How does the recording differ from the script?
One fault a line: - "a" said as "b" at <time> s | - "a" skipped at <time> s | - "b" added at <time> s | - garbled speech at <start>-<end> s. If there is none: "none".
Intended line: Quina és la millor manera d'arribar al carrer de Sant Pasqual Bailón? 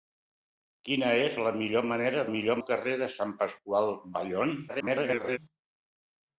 - "d'arribar" said as "millor" at 2.3 s
- garbled speech at 4.7-5.4 s